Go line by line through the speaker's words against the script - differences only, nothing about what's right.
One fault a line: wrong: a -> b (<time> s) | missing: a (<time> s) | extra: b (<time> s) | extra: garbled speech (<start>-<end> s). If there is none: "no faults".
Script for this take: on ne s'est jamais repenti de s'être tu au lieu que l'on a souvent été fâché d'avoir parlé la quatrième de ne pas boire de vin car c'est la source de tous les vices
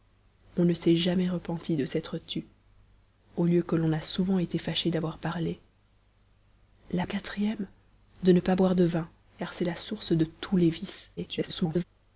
extra: garbled speech (11.2-11.8 s)